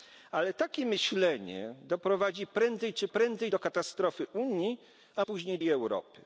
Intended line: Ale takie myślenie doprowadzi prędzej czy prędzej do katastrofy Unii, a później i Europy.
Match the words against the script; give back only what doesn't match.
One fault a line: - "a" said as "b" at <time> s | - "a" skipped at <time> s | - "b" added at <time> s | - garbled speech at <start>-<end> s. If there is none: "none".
none